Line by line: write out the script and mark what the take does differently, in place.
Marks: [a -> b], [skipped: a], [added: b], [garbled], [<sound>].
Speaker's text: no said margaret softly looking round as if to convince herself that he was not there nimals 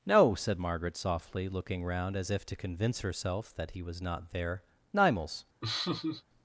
no said margaret softly looking round as if to convince herself that he was not there nimals [laugh]